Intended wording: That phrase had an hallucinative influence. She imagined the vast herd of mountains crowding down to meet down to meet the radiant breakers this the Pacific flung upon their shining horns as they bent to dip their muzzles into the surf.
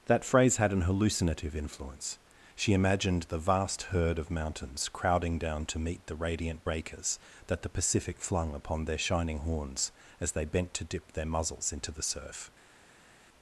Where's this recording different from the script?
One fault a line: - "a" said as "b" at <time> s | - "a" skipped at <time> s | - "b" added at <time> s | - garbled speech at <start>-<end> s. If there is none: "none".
- "down to meet" skipped at 6.1 s
- "this" said as "that" at 7.5 s